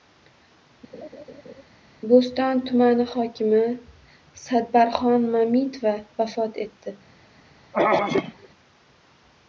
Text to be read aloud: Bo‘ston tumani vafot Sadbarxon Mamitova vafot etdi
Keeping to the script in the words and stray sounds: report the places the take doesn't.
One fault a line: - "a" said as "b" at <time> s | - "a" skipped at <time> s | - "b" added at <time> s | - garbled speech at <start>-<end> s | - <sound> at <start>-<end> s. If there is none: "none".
- laugh at 0.9-1.6 s
- "vafot" said as "hokimi" at 3.1 s
- throat clearing at 7.7-8.5 s